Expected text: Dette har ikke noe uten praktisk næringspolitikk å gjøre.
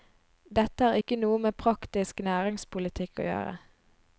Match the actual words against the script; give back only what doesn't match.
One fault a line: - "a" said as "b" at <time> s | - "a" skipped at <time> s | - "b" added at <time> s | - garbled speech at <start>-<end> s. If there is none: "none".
- "uten" said as "med" at 1.5 s